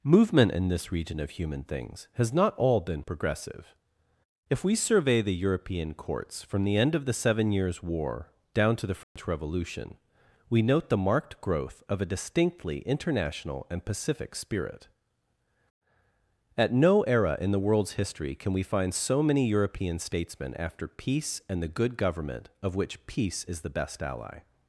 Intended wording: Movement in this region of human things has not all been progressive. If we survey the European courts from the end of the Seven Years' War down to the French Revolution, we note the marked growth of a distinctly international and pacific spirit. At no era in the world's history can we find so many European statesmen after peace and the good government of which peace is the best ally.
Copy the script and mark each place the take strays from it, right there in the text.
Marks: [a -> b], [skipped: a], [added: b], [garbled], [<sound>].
Movement in this region of human things has not all been progressive. If we survey the European courts from the end of the Seven Years' War down to the French [dropout] Revolution, we note the marked growth of a distinctly international and pacific spirit. At no era in the world's history can we find so many European statesmen after peace and the good government of which peace is the best ally.